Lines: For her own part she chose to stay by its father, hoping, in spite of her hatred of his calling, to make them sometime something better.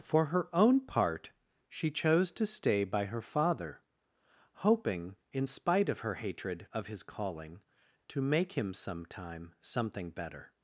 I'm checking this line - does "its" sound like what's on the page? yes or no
no